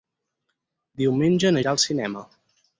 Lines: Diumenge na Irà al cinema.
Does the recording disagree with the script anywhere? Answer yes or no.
no